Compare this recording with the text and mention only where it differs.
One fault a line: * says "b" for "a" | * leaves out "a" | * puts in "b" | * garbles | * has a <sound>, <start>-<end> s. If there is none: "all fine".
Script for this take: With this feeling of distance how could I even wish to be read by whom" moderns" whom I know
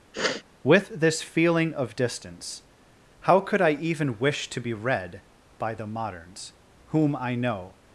* has a sniff, 0.1-0.4 s
* says "the" for "whom"